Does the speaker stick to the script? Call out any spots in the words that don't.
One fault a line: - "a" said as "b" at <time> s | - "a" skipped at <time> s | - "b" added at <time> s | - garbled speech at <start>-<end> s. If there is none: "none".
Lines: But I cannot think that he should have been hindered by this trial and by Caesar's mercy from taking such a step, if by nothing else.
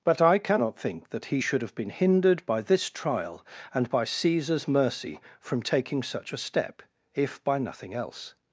none